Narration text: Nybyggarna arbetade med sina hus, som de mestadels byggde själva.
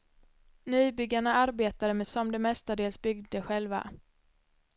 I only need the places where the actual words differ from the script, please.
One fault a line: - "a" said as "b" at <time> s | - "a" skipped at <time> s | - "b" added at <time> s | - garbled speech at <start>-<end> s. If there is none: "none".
- "sina hus" skipped at 2.1 s